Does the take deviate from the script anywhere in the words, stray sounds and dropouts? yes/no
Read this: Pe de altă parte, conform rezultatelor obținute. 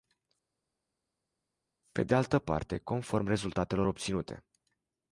no